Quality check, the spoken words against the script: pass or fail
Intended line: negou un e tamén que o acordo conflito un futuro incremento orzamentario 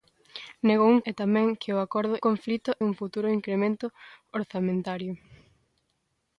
pass